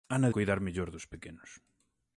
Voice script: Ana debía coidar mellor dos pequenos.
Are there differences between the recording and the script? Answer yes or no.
yes